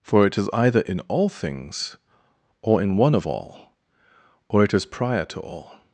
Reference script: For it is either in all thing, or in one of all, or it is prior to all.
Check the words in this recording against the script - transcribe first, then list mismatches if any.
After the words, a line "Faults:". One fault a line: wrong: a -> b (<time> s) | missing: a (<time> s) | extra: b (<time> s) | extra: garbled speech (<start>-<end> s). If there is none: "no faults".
For it is either in all things, or in one of all, or it is prior to all.
Faults:
wrong: thing -> things (1.3 s)